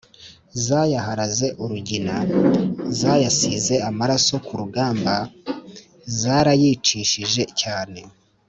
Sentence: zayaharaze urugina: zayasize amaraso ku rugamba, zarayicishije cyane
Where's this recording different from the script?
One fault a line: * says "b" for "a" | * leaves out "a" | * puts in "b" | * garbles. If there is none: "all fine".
all fine